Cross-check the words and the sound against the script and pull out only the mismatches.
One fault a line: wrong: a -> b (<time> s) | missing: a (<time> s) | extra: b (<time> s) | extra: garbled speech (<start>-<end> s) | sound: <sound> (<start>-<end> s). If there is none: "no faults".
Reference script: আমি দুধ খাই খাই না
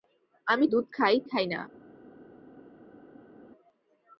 no faults